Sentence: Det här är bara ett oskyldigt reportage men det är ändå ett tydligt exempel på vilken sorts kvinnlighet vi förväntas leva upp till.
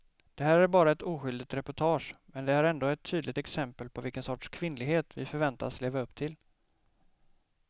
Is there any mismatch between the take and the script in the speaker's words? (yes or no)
no